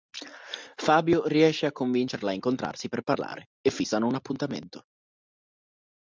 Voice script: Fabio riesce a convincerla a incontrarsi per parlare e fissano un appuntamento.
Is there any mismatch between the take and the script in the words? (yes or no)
no